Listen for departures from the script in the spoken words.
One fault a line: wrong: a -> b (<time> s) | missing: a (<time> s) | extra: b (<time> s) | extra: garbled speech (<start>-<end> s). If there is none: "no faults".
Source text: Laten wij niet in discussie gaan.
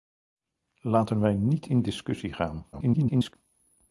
extra: garbled speech (2.7-3.3 s)